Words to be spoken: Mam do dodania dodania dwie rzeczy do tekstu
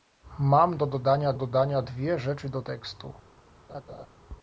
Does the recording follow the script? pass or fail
pass